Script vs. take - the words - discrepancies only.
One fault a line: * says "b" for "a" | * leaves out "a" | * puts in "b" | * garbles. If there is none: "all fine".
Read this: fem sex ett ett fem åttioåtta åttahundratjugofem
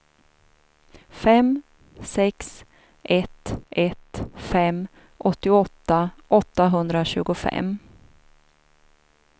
all fine